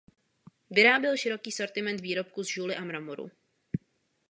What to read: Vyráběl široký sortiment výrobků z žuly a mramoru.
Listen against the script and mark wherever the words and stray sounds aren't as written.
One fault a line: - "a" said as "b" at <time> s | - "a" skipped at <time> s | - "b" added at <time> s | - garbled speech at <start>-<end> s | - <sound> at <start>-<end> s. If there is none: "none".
none